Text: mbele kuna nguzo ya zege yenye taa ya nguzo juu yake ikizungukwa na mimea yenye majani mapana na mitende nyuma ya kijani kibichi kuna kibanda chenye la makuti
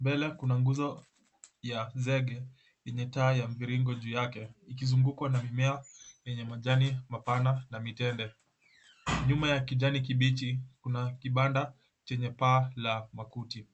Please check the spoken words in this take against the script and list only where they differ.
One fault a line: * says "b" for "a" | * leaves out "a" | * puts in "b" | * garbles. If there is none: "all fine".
* says "mviringo" for "nguzo"
* puts in "paa"